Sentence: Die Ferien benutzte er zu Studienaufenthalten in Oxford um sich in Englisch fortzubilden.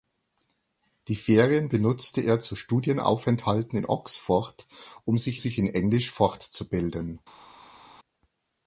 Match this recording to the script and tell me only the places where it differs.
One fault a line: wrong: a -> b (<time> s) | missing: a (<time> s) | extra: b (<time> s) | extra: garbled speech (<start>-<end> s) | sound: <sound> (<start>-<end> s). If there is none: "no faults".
extra: sich (5.4 s)